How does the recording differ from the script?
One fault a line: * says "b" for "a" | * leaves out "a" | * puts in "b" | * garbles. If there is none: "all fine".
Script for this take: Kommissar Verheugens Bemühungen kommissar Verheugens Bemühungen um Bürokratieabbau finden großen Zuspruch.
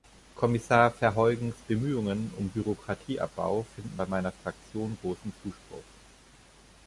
* says "um Bürokratieabbau finden bei meiner Fraktion" for "kommissar Verheugens Bemühungen um Bürokratieabbau finden"